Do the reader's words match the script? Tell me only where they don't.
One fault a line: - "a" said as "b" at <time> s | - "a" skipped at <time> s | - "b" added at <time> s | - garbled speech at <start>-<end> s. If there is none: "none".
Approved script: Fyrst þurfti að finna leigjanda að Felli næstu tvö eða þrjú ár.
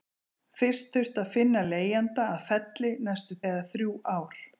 - "tvö" skipped at 3.4 s